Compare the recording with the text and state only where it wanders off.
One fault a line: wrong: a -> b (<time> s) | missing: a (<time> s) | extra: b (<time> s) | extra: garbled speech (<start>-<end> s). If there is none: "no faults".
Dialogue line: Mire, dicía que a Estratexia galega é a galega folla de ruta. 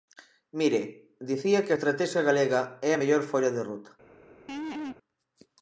wrong: galega -> mellor (3.0 s)